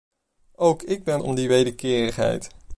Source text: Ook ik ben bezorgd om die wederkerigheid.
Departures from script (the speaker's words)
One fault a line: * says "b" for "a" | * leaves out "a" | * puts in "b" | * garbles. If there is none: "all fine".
* leaves out "bezorgd"